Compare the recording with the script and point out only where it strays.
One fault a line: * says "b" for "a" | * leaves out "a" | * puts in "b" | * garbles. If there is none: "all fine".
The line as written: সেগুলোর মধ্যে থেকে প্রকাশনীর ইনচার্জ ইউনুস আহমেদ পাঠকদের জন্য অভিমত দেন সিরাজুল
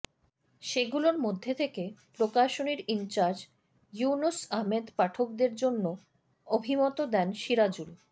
all fine